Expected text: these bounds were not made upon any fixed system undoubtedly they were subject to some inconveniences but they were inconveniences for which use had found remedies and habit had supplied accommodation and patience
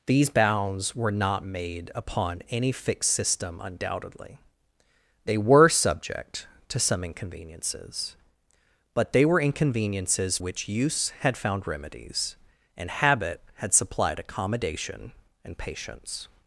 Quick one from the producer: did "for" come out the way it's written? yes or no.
no